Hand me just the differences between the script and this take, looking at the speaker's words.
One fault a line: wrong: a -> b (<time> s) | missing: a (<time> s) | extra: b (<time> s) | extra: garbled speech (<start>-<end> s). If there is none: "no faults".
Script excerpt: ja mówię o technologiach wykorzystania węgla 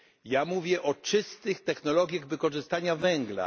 extra: czystych (0.9 s)